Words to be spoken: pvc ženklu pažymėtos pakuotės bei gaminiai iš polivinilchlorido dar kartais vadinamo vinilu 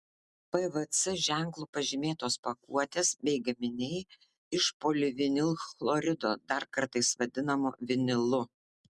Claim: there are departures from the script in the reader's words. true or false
false